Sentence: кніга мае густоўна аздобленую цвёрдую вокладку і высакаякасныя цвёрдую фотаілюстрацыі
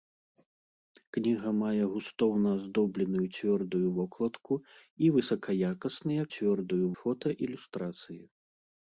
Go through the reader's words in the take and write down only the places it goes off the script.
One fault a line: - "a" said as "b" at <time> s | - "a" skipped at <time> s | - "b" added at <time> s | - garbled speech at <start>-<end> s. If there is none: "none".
none